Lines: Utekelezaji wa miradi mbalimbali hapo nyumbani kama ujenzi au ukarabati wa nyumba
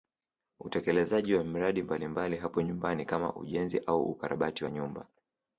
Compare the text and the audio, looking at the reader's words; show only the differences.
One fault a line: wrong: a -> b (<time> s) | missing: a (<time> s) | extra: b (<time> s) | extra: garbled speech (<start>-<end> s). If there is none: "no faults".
no faults